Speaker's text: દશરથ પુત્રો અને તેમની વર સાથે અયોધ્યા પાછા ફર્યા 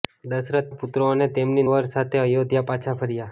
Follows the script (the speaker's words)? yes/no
yes